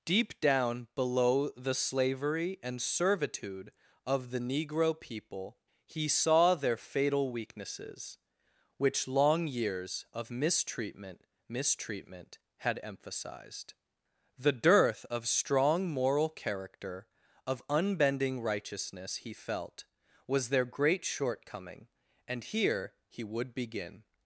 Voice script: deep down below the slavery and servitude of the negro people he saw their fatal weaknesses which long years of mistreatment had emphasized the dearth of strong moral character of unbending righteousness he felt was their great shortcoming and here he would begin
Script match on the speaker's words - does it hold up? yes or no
no